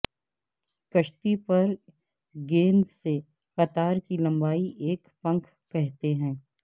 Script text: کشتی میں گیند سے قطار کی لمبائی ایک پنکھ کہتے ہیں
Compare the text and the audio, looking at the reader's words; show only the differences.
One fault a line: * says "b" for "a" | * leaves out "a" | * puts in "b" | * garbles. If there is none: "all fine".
* says "پر" for "میں"